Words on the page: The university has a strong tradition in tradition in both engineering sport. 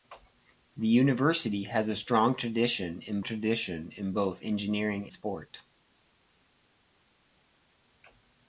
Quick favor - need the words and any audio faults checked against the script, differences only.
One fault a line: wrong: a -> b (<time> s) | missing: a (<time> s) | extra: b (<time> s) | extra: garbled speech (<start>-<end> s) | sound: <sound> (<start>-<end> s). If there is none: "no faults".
no faults